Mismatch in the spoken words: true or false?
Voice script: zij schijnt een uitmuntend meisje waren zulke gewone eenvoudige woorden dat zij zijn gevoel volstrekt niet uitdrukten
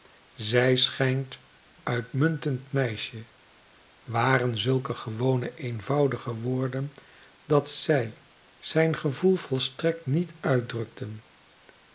true